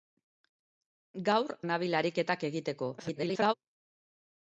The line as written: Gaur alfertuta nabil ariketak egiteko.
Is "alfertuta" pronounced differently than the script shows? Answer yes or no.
yes